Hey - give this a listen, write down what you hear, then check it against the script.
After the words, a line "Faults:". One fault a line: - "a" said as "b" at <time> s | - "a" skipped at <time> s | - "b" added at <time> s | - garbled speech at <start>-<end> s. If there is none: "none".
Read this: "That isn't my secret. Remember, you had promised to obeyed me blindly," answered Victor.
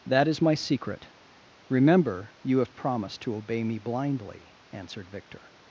"That is my secret. Remember, you have promised to obey me blindly," answered Victor.
Faults:
- "isn't" said as "is" at 0.3 s
- "had" said as "have" at 2.6 s
- "obeyed" said as "obey" at 3.4 s